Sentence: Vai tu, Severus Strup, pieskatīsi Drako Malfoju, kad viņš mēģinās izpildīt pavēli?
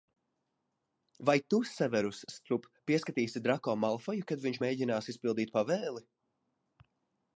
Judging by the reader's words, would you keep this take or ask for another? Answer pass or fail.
pass